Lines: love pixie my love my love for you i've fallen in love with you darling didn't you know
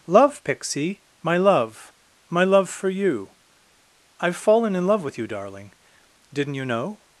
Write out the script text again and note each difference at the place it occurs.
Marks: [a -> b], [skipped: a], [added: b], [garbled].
love pixie my love my love for you i've fallen in love with you darling didn't you know